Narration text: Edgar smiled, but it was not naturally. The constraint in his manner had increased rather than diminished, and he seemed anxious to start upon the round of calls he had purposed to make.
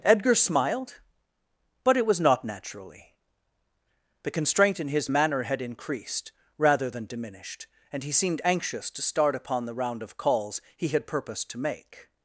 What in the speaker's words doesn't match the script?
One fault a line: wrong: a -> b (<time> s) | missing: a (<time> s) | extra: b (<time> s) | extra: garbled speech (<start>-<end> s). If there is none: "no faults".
no faults